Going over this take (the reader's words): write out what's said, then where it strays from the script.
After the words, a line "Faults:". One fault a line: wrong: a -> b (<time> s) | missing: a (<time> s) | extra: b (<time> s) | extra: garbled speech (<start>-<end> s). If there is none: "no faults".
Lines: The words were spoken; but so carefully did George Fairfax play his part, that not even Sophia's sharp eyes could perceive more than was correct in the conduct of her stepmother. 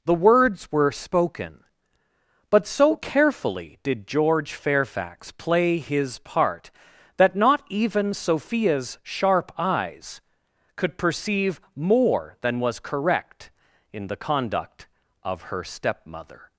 The words were spoken; but so carefully did George Fairfax play his part, that not even Sophia's sharp eyes could perceive more than was correct in the conduct of her stepmother.
Faults:
no faults